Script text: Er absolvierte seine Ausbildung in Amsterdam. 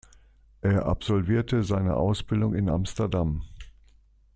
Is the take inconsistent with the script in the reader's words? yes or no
no